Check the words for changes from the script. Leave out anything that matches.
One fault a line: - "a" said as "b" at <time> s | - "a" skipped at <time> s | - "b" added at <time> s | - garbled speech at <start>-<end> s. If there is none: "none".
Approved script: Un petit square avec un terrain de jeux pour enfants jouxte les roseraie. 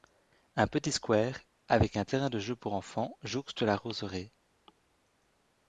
- "les" said as "la" at 3.6 s